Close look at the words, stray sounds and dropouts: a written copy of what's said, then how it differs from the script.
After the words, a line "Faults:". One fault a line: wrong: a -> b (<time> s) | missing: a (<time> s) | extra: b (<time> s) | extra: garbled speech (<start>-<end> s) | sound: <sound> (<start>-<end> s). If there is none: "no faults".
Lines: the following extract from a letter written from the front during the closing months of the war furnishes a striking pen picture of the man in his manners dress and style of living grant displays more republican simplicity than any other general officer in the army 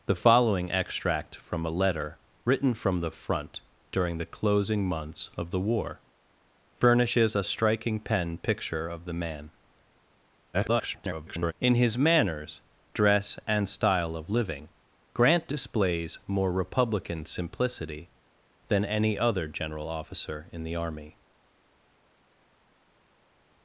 the following extract from a letter written from the front during the closing months of the war furnishes a striking pen picture of the man [garbled] in his manners dress and style of living grant displays more republican simplicity than any other general officer in the army
Faults:
extra: garbled speech (10.5-11.5 s)